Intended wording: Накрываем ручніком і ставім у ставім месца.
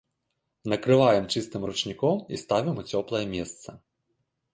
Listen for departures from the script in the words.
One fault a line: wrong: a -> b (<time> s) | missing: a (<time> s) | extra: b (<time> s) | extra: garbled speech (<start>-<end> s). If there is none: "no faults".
extra: чыстым (1.3 s)
wrong: ставім -> цёплае (2.9 s)